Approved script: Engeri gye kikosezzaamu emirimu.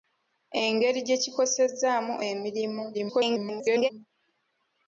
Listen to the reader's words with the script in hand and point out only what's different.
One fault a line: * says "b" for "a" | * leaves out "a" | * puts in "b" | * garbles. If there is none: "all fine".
* garbles